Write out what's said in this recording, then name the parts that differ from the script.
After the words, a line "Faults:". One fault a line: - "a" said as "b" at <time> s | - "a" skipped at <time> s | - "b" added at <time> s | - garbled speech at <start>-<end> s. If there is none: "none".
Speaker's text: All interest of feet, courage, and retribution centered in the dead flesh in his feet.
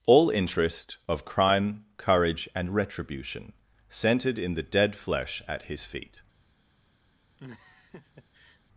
All interest of crime, courage, and retribution centered in the dead flesh at his feet.
Faults:
- "feet" said as "crime" at 1.2 s
- "in" said as "at" at 5.5 s